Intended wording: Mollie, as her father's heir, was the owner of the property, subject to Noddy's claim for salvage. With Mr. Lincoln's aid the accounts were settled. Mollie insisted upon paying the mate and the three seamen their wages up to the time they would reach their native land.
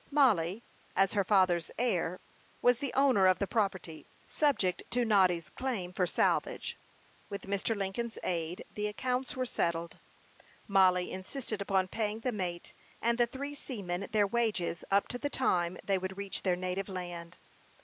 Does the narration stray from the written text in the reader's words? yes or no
no